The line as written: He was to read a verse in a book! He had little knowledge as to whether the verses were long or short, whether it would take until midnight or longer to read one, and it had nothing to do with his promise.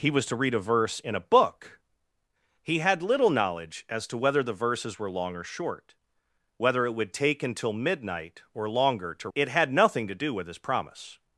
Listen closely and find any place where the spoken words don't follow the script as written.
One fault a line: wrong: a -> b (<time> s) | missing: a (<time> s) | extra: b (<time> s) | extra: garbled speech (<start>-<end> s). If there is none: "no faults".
missing: read one and (9.3 s)